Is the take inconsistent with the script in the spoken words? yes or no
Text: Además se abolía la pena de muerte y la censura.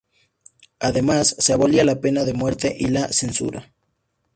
no